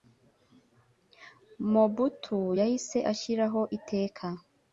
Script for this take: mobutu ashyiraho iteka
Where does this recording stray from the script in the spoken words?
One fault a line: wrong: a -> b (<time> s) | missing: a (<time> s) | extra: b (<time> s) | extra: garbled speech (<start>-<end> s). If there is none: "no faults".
extra: yahise (2.6 s)